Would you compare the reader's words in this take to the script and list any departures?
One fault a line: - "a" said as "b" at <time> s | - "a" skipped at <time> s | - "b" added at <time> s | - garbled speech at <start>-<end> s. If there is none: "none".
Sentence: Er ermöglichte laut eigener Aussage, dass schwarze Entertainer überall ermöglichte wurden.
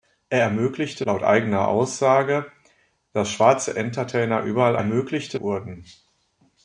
none